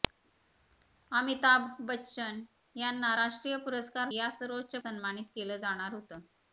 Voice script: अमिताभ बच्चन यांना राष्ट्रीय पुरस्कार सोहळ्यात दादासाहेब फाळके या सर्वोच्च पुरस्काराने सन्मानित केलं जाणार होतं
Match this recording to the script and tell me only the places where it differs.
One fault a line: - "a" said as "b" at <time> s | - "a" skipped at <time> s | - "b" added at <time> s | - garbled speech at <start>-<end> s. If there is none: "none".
- "सोहळ्यात दादासाहेब फाळके" skipped at 4.1 s
- "पुरस्काराने" skipped at 4.8 s